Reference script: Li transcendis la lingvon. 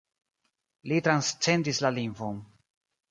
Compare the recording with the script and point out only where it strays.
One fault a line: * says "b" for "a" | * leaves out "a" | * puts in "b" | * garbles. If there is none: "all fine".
all fine